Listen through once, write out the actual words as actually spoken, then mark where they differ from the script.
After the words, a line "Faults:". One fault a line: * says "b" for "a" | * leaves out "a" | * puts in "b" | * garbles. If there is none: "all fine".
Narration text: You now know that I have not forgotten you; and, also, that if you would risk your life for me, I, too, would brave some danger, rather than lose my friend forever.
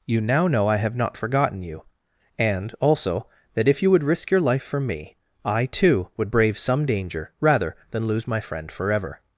You now know I have not forgotten you; and, also, that if you would risk your life for me, I, too, would brave some danger, rather than lose my friend forever.
Faults:
* leaves out "that"